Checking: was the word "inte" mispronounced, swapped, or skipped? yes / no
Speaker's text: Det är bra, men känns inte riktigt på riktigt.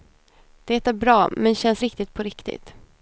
yes